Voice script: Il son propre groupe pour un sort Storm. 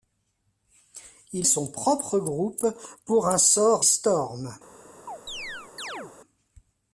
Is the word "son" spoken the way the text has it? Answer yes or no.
yes